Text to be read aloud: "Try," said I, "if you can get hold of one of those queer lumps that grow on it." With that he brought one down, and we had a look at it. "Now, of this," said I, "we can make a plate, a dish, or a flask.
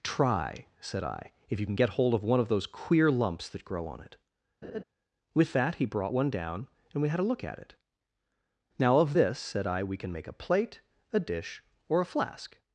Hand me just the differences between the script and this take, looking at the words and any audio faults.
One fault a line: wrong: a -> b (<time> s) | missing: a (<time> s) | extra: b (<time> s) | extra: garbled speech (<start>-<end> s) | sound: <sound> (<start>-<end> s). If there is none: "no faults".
sound: laugh (4.6-4.8 s)